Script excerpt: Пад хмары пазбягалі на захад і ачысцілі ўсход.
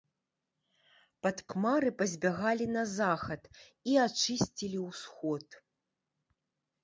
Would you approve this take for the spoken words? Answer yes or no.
yes